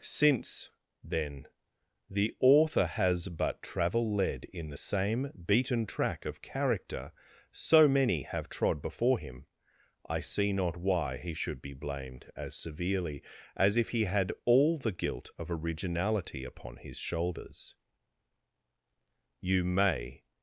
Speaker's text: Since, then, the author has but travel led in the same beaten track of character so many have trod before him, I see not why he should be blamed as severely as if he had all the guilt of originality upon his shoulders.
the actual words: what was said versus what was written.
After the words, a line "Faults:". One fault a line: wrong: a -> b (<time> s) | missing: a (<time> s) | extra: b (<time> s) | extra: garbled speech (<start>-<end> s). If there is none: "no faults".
Since, then, the author has but travel led in the same beaten track of character so many have trod before him, I see not why he should be blamed as severely as if he had all the guilt of originality upon his shoulders. You may
Faults:
extra: You may (19.4 s)